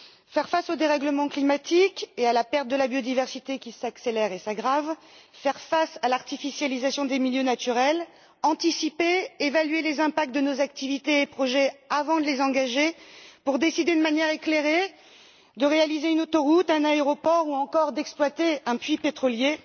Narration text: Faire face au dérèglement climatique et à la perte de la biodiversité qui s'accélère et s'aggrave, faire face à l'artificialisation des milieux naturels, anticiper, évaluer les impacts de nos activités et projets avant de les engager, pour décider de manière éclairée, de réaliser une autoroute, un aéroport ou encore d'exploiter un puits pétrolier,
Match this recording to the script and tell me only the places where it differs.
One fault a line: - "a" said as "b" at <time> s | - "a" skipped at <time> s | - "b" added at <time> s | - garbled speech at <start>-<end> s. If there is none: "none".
none